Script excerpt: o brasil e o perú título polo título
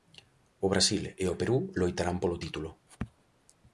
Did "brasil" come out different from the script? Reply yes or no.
no